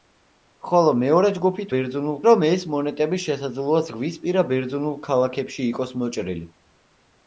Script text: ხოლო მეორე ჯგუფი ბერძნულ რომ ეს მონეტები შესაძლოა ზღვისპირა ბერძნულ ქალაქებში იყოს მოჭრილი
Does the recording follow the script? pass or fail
pass